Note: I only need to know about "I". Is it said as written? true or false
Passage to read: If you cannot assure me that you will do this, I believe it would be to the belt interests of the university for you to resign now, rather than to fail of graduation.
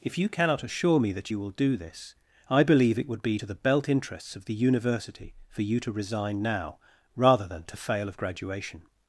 true